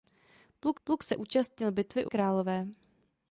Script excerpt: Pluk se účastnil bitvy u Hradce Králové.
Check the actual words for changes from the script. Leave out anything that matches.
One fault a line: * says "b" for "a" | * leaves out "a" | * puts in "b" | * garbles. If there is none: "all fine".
* puts in "pluk"
* leaves out "Hradce"